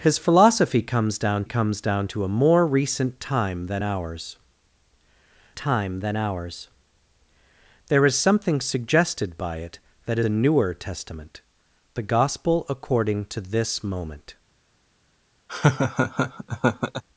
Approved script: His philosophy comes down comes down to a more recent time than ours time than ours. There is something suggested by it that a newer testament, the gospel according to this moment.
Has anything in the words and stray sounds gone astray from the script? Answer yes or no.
yes